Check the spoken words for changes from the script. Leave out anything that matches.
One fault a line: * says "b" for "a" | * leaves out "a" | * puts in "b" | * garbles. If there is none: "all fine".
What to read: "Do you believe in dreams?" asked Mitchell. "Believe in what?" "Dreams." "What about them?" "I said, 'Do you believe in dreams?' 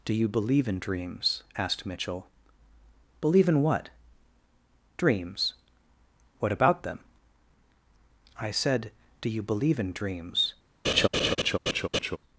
all fine